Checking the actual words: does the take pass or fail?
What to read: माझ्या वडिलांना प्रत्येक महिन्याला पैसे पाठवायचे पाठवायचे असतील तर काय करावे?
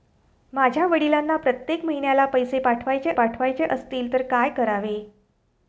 pass